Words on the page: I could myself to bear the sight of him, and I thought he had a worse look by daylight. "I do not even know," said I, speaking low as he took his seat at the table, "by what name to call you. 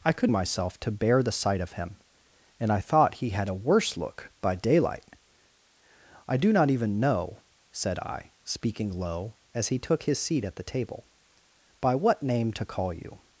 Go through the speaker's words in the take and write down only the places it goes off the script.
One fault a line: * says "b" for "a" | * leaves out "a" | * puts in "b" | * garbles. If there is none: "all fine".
all fine